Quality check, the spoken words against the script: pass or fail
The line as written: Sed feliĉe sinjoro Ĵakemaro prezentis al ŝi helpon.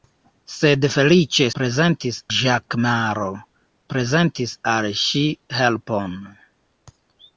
fail